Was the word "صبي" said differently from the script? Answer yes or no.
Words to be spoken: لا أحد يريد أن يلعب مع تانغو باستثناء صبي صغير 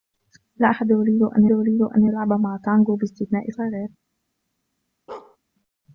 yes